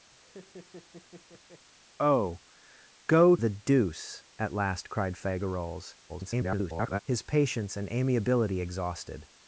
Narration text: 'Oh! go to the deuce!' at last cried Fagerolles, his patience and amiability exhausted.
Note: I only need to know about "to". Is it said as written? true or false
false